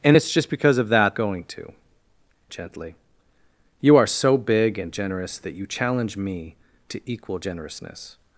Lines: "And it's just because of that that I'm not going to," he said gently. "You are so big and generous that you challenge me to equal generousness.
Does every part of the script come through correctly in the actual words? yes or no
no